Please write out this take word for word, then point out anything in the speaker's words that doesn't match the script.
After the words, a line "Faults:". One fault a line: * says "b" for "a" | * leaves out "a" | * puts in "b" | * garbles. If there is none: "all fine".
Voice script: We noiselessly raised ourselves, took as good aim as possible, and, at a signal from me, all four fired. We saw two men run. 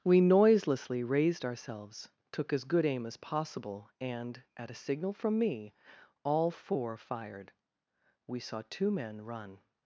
We noiselessly raised ourselves, took as good aim as possible, and, at a signal from me, all four fired. We saw two men run.
Faults:
all fine